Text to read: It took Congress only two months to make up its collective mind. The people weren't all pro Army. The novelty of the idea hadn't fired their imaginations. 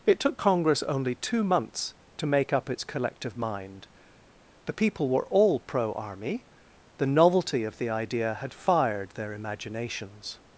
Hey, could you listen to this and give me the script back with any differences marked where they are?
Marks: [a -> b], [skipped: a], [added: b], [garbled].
It took Congress only two months to make up its collective mind. The people [weren't -> were] all pro Army. The novelty of the idea [hadn't -> had] fired their imaginations.